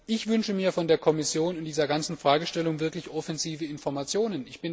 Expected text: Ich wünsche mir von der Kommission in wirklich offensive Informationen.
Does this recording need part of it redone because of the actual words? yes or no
yes